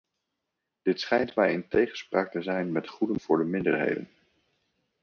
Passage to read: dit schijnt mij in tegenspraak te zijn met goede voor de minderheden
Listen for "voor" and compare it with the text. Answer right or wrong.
right